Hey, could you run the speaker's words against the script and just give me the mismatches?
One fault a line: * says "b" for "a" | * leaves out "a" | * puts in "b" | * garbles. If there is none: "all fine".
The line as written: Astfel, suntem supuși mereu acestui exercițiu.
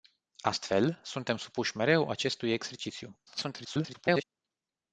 * garbles